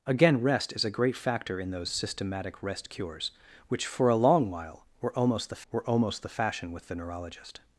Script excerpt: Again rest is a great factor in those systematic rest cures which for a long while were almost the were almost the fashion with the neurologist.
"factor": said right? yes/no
yes